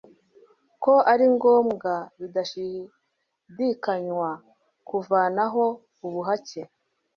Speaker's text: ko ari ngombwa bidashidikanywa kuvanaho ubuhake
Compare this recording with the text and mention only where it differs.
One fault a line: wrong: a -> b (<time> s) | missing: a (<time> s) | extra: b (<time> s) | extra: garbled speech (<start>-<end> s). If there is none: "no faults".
no faults